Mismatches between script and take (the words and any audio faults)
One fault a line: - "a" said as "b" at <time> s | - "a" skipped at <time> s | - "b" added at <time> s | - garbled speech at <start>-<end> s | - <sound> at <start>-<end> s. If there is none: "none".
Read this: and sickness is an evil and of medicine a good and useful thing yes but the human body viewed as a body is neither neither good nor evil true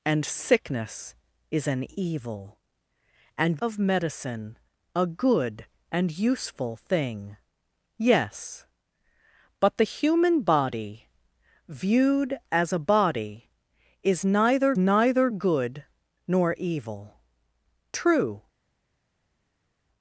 none